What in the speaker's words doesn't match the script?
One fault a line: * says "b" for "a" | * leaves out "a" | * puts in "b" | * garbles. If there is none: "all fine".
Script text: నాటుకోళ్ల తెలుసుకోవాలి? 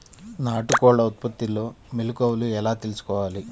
* puts in "ఉత్పత్తిలో మెలుకువలు ఎలా"